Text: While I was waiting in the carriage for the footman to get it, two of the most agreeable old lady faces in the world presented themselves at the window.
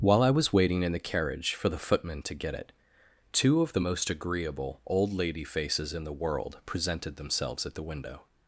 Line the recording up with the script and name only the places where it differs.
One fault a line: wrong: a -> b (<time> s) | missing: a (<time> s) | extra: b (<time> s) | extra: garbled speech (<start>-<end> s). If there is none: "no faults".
no faults